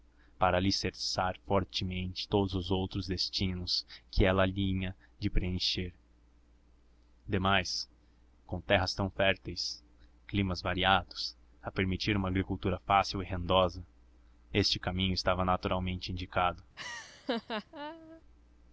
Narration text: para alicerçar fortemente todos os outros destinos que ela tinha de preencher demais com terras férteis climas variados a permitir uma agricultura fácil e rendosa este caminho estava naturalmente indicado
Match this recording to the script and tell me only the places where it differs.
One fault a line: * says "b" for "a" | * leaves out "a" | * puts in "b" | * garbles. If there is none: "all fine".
* puts in "tão"